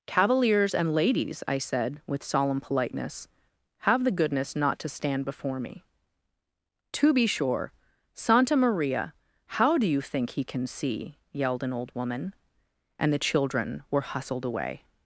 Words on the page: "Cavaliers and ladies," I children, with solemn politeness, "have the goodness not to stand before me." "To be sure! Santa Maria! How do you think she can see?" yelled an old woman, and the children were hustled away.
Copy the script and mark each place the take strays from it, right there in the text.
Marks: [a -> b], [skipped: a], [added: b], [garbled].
"Cavaliers and ladies," I [children, -> said] with solemn politeness, "have the goodness not to stand before me." "To be sure! Santa Maria! How do you think [she -> he] can see?" yelled an old woman, and the children were hustled away.